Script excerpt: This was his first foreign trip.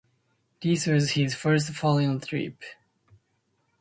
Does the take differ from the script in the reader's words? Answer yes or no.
no